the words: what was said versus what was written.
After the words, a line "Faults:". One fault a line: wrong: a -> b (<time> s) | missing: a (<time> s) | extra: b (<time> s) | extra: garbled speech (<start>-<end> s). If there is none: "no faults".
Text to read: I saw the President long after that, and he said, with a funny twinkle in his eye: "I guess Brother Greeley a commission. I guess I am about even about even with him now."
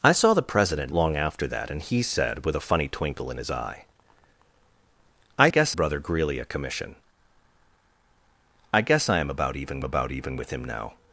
I saw the President long after that, and he said, with a funny twinkle in his eye: "I guess Brother Greeley a commission. I guess I am about even about even with him now."
Faults:
no faults